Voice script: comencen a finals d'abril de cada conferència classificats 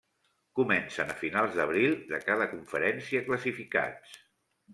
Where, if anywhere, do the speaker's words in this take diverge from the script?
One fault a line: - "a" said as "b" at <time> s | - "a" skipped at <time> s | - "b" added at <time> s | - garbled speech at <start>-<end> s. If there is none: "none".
none